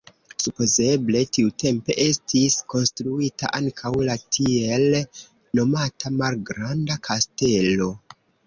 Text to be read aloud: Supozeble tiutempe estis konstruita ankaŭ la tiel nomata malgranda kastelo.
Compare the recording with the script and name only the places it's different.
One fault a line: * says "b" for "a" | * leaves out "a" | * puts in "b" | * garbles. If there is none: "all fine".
all fine